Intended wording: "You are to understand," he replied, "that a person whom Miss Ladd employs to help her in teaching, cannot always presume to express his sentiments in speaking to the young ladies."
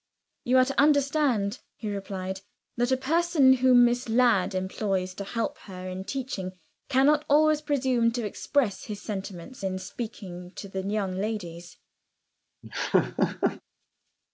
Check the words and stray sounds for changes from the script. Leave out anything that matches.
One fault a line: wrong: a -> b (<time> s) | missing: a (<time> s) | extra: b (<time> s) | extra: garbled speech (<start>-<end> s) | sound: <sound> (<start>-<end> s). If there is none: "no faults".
sound: laugh (12.6-13.6 s)